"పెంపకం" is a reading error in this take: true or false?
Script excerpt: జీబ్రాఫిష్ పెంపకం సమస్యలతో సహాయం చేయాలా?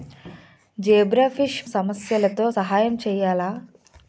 true